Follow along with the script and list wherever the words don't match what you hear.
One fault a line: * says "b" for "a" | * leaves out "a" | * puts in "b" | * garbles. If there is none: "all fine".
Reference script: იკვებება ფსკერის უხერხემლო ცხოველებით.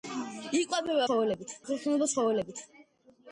* says "ცხოველებით" for "ფსკერის"